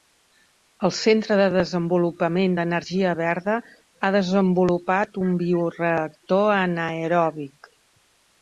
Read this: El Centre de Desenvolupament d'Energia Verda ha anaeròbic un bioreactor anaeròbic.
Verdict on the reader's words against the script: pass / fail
fail